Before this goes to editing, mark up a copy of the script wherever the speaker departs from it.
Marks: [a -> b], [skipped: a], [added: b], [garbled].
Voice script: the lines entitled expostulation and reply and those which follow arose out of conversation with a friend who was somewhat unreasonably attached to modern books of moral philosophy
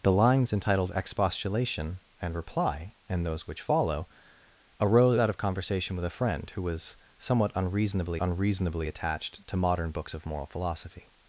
the lines entitled expostulation and reply and those which follow arose out of conversation with a friend who was somewhat unreasonably [added: unreasonably] attached to modern books of moral philosophy